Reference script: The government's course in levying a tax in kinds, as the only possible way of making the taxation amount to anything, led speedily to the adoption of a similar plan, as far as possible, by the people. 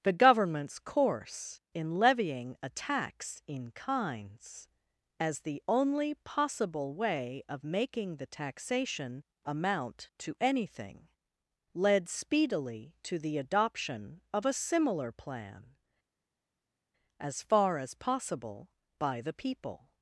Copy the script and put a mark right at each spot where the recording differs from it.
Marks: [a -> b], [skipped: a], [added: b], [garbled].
The government's course in levying a tax in kinds, as the only possible way of making the taxation amount to anything, led speedily to the adoption of a similar plan, as far as possible, by the people.